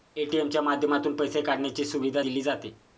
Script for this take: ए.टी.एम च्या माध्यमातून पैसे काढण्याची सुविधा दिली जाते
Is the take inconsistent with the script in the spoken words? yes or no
no